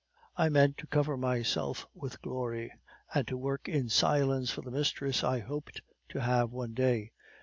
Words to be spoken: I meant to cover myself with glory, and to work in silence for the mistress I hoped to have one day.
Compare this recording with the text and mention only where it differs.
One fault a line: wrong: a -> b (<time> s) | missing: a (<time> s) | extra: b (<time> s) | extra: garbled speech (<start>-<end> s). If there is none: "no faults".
no faults